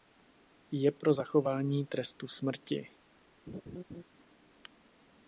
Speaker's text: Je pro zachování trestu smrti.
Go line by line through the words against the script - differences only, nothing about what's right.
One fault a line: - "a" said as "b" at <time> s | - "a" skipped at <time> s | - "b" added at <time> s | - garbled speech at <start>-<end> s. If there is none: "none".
none